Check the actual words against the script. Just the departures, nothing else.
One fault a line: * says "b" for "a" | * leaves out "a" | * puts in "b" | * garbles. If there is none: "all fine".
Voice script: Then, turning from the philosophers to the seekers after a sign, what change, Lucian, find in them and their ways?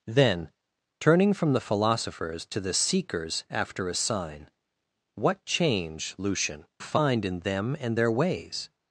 all fine